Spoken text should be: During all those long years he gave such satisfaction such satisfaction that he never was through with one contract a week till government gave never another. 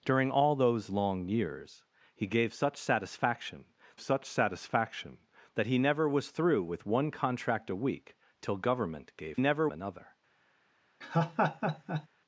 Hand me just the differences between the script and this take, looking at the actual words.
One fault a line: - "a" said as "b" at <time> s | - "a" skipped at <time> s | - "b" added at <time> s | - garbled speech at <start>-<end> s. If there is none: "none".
none